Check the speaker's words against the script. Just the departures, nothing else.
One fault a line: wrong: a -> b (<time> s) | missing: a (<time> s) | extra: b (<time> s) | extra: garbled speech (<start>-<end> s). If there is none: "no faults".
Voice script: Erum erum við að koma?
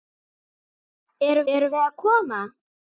no faults